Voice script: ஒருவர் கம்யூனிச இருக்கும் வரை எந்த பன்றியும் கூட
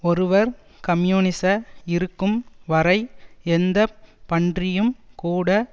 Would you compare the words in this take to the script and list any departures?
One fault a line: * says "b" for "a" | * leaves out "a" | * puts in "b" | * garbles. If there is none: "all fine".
all fine